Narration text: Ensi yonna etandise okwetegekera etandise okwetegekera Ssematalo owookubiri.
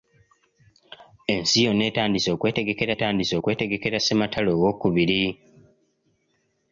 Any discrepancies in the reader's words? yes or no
no